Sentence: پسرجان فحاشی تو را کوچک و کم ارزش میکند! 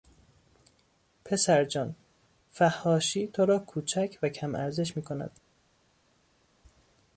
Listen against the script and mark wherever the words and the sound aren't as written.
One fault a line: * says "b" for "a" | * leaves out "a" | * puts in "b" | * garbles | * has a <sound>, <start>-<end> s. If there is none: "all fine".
all fine